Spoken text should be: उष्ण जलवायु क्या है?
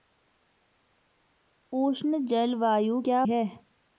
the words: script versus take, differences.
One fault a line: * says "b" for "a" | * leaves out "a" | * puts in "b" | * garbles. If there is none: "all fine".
all fine